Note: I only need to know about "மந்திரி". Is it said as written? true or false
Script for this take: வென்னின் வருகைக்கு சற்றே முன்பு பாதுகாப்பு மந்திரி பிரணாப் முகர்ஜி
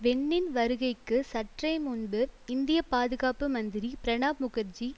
true